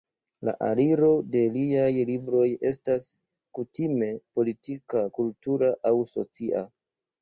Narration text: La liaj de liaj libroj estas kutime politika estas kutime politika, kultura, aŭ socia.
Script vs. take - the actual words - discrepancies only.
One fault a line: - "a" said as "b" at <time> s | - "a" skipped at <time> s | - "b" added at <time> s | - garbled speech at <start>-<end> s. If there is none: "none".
- "liaj" said as "aliro" at 0.7 s
- "estas kutime politika" skipped at 5.1 s